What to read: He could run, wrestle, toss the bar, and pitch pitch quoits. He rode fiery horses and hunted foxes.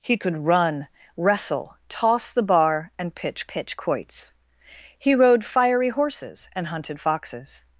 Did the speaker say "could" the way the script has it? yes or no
yes